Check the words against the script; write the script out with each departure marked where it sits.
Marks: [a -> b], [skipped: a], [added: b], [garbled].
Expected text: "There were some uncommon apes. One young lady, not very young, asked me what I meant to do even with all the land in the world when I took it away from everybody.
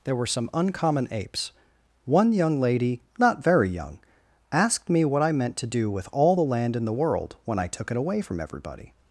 "There were some uncommon apes. One young lady, not very young, asked me what I meant to do [skipped: even] with all the land in the world when I took it away from everybody.